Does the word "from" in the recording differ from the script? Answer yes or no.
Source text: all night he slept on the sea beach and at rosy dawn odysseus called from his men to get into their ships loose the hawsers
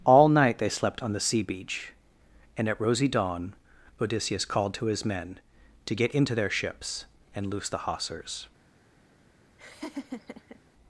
yes